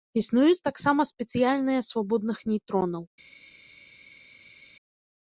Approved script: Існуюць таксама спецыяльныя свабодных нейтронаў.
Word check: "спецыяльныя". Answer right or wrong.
right